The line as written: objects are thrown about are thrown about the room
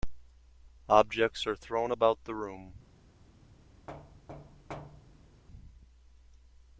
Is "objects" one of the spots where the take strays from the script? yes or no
no